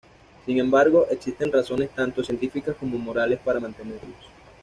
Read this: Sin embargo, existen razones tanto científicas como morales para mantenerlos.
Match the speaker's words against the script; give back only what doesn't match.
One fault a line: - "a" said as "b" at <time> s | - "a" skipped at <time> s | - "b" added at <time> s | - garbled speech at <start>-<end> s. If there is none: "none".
none